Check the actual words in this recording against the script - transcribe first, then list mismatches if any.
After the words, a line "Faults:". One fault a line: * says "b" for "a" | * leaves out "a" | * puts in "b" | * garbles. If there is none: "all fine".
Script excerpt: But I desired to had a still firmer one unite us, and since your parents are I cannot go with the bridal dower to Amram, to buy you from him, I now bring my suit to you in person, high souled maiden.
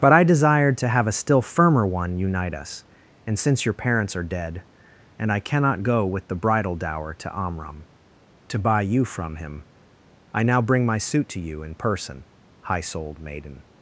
But I desired to have a still firmer one unite us, and since your parents are dead, and I cannot go with the bridal dower to Amram, to buy you from him, I now bring my suit to you in person, high souled maiden.
Faults:
* says "have" for "had"
* puts in "dead and"